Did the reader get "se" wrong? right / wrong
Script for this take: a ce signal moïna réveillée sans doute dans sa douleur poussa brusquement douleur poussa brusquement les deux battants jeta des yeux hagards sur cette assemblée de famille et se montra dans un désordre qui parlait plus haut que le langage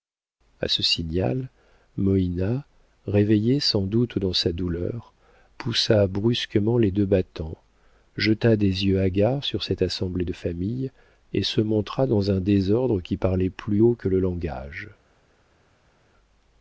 right